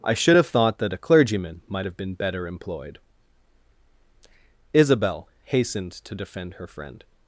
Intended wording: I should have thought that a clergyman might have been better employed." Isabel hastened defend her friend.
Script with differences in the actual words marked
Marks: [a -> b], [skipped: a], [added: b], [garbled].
I should have thought that a clergyman might have been better employed." Isabel hastened [added: to] defend her friend.